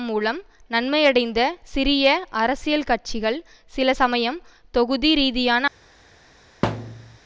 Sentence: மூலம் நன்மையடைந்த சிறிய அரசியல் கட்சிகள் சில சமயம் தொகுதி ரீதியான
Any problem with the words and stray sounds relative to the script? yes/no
yes